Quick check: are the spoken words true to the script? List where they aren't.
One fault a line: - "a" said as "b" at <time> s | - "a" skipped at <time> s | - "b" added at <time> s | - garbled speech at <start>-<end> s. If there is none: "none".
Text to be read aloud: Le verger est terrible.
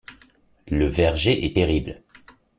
none